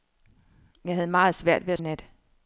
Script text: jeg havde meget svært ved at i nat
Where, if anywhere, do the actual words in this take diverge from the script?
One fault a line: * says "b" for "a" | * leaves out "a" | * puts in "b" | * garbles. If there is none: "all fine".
all fine